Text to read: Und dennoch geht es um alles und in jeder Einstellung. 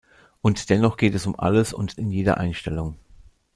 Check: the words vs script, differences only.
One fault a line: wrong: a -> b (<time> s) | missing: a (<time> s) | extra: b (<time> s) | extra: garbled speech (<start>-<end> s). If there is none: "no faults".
no faults